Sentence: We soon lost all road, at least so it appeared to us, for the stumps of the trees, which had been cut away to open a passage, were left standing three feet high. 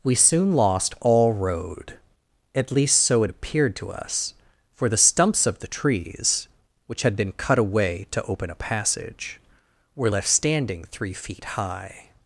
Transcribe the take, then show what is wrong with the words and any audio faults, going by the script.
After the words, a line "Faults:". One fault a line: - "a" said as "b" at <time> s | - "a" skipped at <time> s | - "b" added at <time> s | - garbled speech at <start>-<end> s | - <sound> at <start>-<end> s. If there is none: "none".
We soon lost all road, at least so it appeared to us, for the stumps of the trees, which had been cut away to open a passage, were left standing three feet high.
Faults:
none